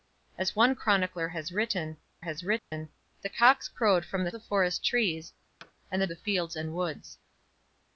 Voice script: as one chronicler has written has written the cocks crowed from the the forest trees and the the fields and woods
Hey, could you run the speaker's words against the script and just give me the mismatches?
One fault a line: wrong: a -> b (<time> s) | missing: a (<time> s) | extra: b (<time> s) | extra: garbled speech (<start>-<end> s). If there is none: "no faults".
no faults